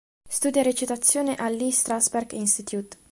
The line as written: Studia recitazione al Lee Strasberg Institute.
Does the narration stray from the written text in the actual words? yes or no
no